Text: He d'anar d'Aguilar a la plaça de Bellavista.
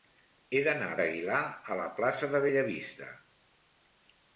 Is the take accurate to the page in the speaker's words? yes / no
yes